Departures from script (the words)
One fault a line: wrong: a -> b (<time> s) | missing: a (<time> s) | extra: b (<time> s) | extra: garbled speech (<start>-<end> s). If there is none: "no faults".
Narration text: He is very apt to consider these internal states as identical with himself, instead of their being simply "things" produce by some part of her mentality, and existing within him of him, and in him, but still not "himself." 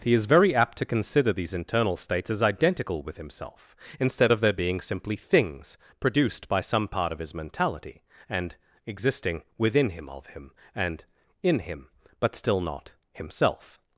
wrong: produce -> produced (6.0 s)
wrong: her -> his (7.2 s)